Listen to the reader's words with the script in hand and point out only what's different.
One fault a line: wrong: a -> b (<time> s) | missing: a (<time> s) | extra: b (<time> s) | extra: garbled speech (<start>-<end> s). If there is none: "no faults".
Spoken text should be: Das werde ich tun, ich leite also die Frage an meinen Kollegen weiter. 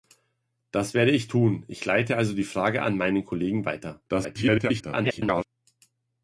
extra: garbled speech (4.1-5.4 s)